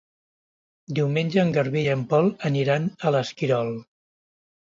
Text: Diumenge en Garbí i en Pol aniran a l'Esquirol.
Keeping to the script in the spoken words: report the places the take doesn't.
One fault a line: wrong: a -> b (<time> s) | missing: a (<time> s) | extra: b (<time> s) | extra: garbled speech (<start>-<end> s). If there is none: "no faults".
no faults